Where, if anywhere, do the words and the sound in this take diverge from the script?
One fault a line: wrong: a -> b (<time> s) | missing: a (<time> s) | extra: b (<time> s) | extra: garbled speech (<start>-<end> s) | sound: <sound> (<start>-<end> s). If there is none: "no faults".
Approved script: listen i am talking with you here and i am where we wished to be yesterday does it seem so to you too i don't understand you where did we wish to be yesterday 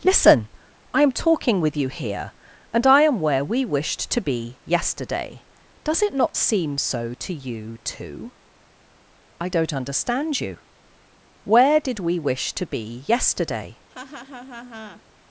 extra: not (6.2 s)
sound: laugh (13.9-15.0 s)